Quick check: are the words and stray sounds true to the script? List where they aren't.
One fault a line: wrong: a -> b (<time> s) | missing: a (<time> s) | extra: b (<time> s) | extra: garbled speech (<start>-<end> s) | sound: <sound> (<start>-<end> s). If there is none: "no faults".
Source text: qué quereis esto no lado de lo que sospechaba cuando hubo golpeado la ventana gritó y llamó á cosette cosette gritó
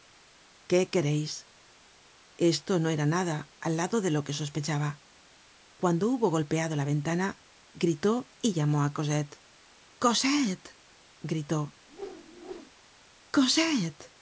extra: era nada al (2.9 s)
sound: whoosh (11.9-12.7 s)